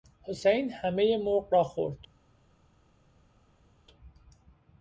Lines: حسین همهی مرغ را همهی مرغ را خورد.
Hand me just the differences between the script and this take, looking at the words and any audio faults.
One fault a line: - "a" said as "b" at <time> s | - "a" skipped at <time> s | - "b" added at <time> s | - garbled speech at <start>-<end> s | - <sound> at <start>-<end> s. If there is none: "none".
- "همهی مرغ را" skipped at 1.6 s